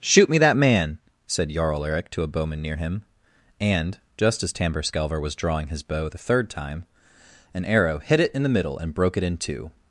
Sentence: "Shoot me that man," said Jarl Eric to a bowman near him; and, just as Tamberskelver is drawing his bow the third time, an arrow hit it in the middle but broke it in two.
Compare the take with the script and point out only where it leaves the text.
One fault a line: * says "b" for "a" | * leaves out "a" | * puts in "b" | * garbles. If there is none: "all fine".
* says "was" for "is"
* says "and" for "but"